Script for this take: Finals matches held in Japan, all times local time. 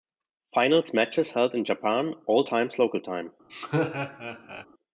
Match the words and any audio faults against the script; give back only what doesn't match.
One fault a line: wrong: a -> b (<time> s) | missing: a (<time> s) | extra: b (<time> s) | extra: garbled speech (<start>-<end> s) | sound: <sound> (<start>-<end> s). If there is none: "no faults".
sound: laugh (3.5-4.7 s)